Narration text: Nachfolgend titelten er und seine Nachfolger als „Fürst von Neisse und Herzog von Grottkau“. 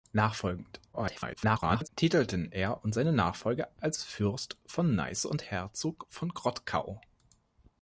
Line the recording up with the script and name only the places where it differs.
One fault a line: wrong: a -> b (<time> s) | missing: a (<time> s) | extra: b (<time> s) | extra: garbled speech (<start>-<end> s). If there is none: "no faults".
extra: garbled speech (0.9-1.9 s)